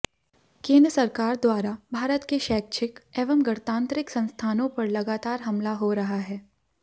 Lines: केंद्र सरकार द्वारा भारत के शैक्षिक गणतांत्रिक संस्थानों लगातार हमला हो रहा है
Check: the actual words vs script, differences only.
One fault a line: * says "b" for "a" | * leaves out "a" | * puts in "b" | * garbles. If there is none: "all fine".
* puts in "एवं"
* puts in "पर"